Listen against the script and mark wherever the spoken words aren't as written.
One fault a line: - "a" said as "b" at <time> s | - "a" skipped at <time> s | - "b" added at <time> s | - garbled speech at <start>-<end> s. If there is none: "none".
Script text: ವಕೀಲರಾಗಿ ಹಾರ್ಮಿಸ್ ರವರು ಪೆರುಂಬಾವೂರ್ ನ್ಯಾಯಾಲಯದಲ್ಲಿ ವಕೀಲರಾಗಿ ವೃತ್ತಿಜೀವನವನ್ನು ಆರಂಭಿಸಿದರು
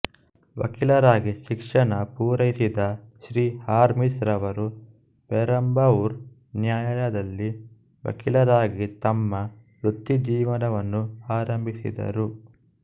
- "ಶಿಕ್ಷಣ ಪೂರೈಸಿದ ಶ್ರೀ" added at 1.4 s
- "ತಮ್ಮ" added at 9.1 s